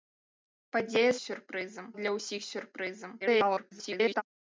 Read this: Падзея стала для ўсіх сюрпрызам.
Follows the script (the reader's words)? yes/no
no